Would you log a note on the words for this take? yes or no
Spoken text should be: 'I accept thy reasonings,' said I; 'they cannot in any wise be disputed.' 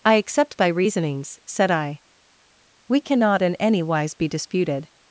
yes